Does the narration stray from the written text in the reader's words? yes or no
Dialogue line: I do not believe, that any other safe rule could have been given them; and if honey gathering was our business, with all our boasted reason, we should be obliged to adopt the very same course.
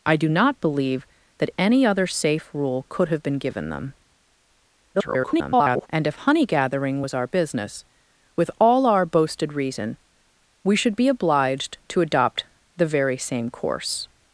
yes